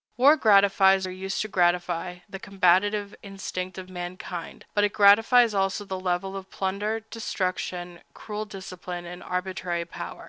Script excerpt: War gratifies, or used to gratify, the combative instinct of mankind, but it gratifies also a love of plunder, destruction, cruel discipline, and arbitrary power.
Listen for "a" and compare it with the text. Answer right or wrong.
wrong